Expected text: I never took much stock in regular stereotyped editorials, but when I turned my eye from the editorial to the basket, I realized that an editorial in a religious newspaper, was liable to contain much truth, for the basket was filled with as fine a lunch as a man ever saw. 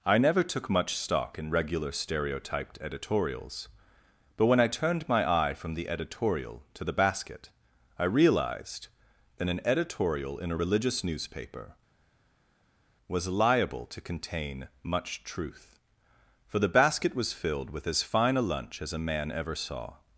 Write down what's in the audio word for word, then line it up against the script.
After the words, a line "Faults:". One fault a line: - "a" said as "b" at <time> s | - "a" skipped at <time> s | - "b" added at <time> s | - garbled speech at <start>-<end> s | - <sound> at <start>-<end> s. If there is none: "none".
I never took much stock in regular stereotyped editorials, but when I turned my eye from the editorial to the basket, I realized that an editorial in a religious newspaper, was liable to contain much truth, for the basket was filled with as fine a lunch as a man ever saw.
Faults:
none